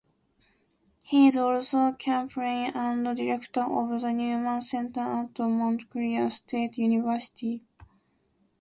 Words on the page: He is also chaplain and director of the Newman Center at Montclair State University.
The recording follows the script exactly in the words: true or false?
true